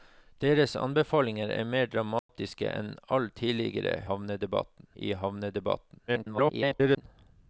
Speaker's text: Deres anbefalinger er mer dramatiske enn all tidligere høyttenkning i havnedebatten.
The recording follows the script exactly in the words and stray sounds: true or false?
false